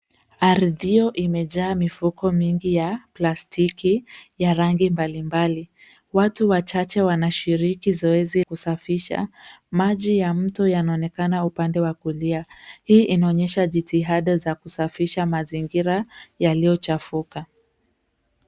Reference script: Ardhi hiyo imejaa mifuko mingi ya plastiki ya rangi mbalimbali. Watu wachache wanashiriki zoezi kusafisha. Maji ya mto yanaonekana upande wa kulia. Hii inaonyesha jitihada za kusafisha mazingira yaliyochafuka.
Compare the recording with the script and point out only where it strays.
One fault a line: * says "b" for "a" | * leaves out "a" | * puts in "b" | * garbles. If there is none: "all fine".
all fine